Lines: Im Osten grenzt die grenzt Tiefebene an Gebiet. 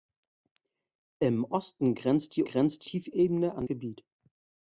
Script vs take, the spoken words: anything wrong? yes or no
no